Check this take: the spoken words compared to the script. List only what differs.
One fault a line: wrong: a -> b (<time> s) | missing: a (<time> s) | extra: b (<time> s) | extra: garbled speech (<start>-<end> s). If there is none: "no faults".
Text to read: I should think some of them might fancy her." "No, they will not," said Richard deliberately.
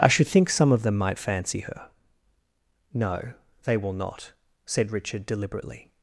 no faults